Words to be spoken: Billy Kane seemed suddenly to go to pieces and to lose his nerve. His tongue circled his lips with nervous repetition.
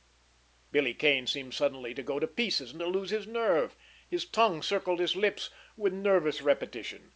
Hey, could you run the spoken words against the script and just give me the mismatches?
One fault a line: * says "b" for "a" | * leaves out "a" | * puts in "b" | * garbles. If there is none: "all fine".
all fine